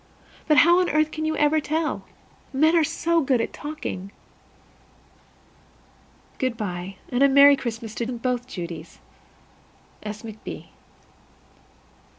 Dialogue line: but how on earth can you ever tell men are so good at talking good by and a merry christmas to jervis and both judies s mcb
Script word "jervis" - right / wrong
wrong